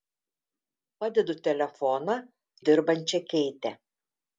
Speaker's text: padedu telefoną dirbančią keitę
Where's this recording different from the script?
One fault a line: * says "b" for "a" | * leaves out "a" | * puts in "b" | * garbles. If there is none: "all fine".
all fine